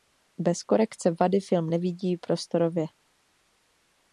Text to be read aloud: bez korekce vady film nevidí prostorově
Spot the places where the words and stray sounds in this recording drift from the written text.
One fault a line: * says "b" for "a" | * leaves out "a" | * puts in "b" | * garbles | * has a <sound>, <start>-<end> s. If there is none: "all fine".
all fine